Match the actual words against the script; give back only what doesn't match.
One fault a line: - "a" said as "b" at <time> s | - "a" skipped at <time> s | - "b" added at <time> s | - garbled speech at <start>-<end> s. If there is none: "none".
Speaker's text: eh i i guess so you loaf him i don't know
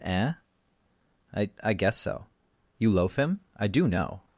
- "don't" said as "do" at 3.7 s